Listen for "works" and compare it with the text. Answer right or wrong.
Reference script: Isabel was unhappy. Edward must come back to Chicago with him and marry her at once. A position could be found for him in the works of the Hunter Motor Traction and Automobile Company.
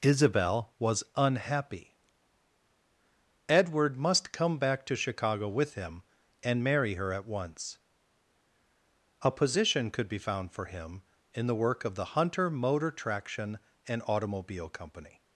wrong